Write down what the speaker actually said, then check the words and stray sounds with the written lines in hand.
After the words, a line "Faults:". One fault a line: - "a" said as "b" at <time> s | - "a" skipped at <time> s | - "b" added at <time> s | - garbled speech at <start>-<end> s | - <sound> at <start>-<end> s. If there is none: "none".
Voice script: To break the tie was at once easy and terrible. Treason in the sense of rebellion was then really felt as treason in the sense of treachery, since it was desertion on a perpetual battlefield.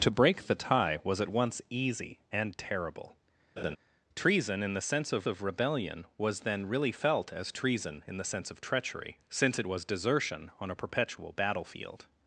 To break the tie was at once easy and terrible. Treason in the sense of of rebellion was then really felt as treason in the sense of treachery, since it was desertion on a perpetual battlefield.
Faults:
- laugh at 3.6-3.8 s
- "of" added at 5.3 s